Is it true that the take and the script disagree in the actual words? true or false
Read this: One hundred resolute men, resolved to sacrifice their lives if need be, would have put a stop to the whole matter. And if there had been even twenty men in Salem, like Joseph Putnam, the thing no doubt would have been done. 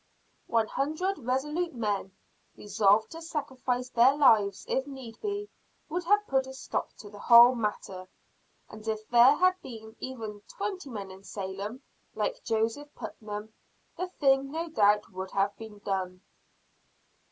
false